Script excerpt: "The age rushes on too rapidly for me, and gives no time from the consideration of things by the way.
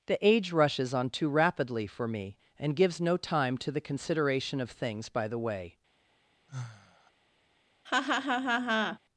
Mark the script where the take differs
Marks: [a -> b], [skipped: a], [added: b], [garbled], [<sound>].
"The age rushes on too rapidly for me, and gives no time [from -> to] the consideration of things by the way. [sigh] [laugh]